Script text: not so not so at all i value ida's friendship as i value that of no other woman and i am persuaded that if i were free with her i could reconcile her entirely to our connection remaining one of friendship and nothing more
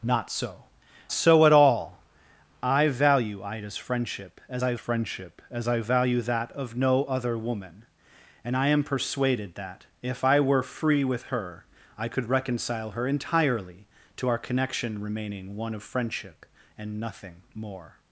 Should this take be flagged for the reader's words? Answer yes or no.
yes